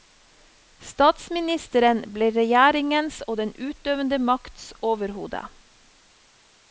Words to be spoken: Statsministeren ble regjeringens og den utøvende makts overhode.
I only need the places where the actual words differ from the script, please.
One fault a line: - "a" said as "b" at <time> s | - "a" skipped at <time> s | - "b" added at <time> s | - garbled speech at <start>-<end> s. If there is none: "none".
none